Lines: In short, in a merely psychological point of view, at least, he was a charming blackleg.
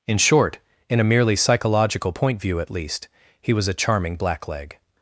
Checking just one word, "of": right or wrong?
wrong